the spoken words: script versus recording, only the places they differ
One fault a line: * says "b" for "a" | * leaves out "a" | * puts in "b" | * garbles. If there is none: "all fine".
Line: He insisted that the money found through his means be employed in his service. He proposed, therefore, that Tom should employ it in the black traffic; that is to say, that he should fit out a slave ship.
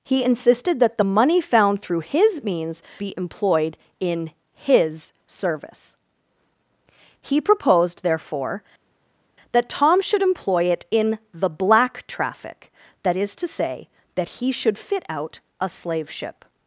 all fine